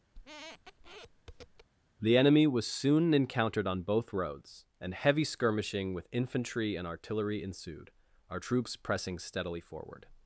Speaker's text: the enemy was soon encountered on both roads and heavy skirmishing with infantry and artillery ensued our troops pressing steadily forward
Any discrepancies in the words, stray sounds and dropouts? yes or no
yes